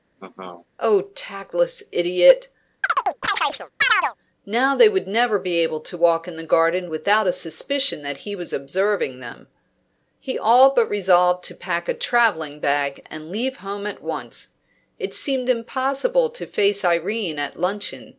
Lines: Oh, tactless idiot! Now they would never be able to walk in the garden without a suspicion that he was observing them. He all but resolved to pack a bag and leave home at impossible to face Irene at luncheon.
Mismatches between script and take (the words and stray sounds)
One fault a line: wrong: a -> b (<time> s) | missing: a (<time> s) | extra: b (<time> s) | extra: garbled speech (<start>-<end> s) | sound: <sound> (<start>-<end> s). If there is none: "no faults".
sound: laugh (0.2-0.7 s)
sound: chirp (2.8-4.2 s)
extra: travelling (11.9 s)
extra: once It seemed (14.0 s)